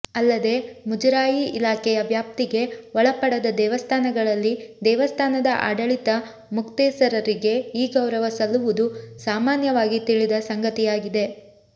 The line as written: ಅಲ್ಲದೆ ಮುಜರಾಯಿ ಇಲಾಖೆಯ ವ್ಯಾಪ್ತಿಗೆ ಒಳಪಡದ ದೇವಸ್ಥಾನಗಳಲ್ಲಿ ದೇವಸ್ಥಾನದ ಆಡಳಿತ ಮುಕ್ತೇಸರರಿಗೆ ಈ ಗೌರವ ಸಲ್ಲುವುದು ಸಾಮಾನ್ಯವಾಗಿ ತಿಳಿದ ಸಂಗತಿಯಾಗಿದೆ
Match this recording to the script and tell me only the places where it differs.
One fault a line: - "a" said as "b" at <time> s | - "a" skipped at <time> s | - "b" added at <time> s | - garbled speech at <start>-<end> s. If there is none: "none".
none